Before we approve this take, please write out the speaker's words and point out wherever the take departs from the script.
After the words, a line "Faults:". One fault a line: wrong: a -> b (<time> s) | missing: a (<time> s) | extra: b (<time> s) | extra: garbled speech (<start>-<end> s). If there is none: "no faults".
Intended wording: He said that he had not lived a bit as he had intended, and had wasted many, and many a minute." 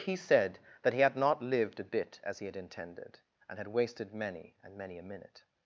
He said that he had not lived a bit as he had intended, and had wasted many, and many a minute."
Faults:
no faults